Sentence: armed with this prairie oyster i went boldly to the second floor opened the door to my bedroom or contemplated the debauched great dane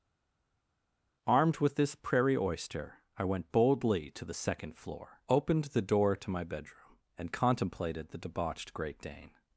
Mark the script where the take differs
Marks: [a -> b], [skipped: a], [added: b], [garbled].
armed with this prairie oyster i went boldly to the second floor opened the door to my bedroom [or -> and] contemplated the debauched great dane